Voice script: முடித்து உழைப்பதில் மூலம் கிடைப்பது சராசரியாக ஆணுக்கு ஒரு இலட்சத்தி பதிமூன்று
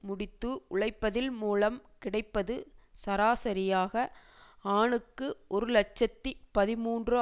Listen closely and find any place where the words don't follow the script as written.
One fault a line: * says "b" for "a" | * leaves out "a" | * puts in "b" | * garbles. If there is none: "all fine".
all fine